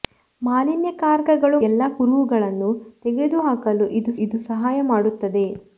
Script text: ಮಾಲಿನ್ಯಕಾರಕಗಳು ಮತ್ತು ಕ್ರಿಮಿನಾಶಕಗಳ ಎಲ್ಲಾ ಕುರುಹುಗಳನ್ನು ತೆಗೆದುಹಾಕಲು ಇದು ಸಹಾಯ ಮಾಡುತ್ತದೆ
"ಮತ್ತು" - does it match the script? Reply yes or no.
no